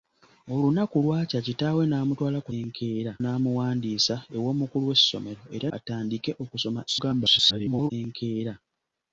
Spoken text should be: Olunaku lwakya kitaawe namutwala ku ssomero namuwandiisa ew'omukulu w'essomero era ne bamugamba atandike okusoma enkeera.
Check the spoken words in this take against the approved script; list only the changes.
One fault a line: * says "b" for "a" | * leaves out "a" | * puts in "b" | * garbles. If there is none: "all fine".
* says "enkeera" for "ssomero"
* leaves out "ne bamugamba"
* garbles